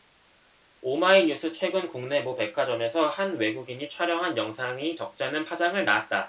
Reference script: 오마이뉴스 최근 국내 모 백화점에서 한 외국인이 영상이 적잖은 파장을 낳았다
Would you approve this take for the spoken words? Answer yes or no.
no